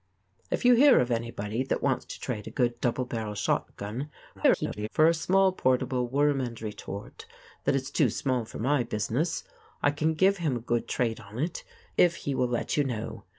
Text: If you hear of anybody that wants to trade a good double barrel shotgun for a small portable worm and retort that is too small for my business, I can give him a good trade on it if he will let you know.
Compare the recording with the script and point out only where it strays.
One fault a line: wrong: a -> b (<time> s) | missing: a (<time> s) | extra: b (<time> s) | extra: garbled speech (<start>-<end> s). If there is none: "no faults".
extra: garbled speech (4.3-4.9 s)